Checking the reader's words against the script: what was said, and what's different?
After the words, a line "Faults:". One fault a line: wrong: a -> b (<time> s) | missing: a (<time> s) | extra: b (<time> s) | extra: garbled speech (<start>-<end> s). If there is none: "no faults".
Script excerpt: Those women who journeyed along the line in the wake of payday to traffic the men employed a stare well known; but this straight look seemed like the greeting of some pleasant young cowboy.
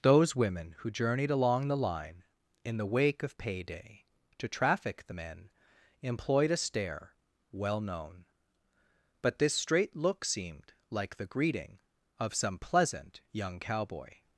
Those women who journeyed along the line in the wake of payday to traffic the men employed a stare well known; but this straight look seemed like the greeting of some pleasant young cowboy.
Faults:
no faults